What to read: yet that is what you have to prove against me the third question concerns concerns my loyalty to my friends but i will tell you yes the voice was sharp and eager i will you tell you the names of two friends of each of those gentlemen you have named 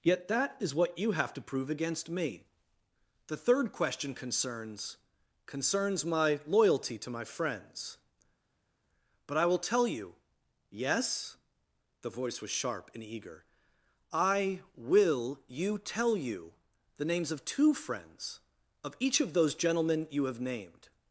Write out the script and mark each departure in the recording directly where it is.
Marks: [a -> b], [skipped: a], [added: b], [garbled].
yet that is what you have to prove against me the third question concerns concerns my loyalty to my friends but i will tell you yes the voice was sharp and eager i will you tell you the names of two friends of each of those gentlemen you have named